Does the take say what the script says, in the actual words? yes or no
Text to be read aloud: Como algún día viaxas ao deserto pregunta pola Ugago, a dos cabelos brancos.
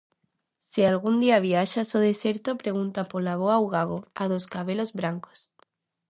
no